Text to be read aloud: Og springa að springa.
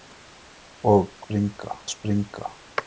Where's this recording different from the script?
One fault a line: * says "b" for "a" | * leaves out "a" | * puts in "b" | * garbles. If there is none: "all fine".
all fine